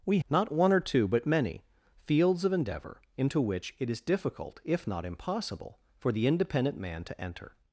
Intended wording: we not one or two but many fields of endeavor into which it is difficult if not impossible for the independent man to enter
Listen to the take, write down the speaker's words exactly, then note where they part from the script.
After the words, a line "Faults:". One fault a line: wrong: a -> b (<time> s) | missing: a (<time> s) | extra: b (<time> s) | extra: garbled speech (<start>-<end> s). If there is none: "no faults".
we not one or two but many fields of endeavor into which it is difficult if not impossible for the independent man to enter
Faults:
no faults